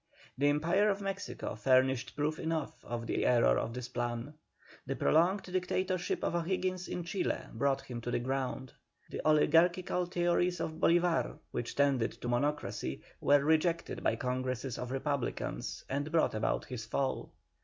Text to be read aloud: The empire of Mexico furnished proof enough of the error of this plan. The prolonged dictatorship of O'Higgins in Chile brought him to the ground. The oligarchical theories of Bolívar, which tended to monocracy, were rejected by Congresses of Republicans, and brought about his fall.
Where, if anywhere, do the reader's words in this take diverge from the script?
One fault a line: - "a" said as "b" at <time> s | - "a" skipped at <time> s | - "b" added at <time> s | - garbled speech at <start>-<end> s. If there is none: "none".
- "the" added at 3.1 s